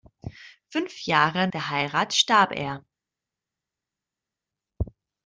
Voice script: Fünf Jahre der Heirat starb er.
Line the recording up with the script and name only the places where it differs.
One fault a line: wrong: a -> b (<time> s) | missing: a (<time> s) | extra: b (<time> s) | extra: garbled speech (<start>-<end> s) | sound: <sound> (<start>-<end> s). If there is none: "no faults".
no faults